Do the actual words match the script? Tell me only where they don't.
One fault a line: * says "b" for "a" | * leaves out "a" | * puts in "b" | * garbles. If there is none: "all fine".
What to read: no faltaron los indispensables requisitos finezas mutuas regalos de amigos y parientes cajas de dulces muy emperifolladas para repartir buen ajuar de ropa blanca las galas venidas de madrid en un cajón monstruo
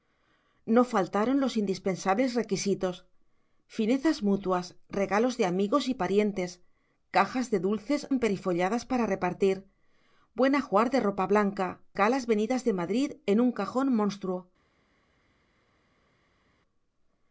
* leaves out "muy"
* leaves out "las"